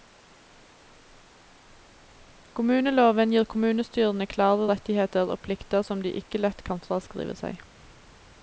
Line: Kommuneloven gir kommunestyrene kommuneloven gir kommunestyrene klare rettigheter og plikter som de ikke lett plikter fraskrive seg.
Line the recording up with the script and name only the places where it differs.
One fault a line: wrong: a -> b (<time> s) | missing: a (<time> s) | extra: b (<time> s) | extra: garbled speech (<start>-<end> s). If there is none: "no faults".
missing: kommuneloven gir kommunestyrene (4.3 s)
wrong: plikter -> kan (6.7 s)